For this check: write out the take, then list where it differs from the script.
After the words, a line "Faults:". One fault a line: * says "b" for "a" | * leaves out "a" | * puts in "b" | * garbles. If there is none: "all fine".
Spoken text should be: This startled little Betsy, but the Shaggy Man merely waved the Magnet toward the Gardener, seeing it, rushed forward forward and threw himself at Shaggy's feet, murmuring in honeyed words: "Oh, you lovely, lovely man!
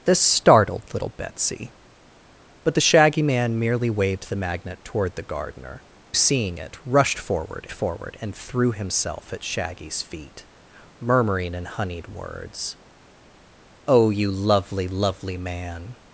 This startled little Betsy, but the Shaggy Man merely waved the Magnet toward the Gardener, seeing it, rushed forward forward and threw himself at Shaggy's feet, murmuring in honeyed words: "Oh, you lovely, lovely man!
Faults:
all fine